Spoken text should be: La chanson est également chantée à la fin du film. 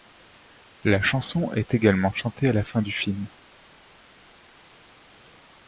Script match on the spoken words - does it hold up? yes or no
yes